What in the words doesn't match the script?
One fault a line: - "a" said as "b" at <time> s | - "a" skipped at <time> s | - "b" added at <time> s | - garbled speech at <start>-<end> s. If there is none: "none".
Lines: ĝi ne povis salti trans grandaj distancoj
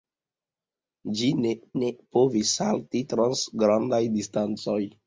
- "ne" added at 1.8 s